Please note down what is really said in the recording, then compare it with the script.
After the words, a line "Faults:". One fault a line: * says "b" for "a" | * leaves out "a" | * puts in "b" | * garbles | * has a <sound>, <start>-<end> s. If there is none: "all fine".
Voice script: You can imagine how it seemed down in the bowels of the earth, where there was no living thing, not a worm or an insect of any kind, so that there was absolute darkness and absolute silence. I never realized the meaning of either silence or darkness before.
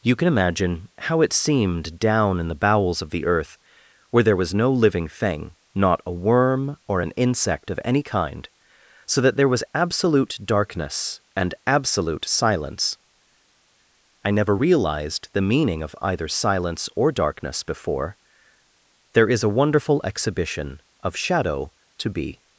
You can imagine how it seemed down in the bowels of the earth, where there was no living thing, not a worm or an insect of any kind, so that there was absolute darkness and absolute silence. I never realized the meaning of either silence or darkness before. There is a wonderful exhibition of shadow to be
Faults:
* puts in "There is a wonderful exhibition of shadow to be"